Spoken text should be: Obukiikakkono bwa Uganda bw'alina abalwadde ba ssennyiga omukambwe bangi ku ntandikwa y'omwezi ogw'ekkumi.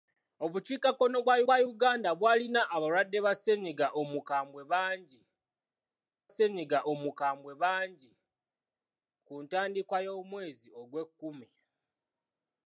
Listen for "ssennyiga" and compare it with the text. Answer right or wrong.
right